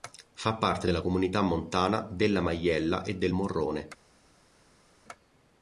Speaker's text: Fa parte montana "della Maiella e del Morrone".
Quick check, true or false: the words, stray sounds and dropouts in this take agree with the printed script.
false